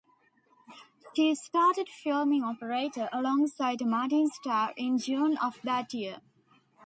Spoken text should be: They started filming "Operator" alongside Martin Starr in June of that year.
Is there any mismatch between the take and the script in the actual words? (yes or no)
yes